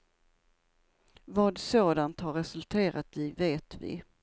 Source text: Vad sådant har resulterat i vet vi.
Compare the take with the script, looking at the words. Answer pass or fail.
pass